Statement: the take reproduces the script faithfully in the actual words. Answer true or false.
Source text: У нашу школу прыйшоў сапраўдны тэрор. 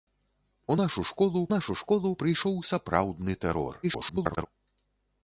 false